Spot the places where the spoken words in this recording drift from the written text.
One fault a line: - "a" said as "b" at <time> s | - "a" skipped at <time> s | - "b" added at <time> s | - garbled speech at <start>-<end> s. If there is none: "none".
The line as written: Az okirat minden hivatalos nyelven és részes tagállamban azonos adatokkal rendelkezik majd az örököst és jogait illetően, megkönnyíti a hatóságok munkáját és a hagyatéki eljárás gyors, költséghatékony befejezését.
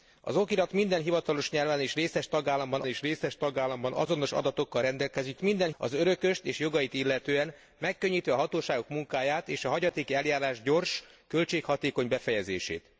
- "és részes tagállamban" added at 2.8 s
- "majd" said as "minden" at 5.4 s